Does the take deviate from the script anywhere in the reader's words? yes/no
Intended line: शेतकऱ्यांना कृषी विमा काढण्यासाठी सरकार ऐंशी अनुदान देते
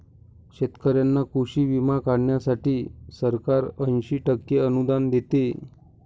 yes